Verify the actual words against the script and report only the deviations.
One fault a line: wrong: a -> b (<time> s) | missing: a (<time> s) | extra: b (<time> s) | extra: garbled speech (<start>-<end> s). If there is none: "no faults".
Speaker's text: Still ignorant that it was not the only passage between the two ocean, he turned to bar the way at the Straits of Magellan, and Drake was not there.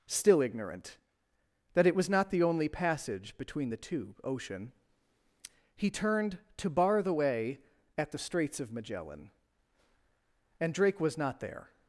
no faults